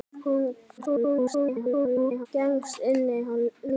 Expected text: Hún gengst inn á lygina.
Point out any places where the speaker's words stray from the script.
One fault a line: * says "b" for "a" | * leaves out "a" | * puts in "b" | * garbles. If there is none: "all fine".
* garbles